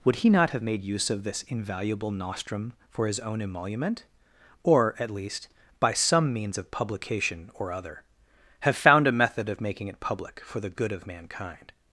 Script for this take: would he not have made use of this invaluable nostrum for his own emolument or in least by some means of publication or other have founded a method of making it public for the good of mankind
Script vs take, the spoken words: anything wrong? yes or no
yes